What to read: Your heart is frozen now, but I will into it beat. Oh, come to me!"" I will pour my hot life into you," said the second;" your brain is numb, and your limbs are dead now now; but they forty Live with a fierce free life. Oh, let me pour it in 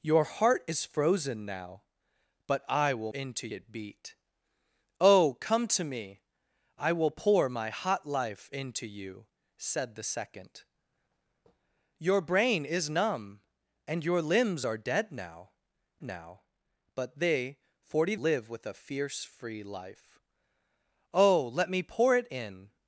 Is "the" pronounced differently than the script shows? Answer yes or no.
no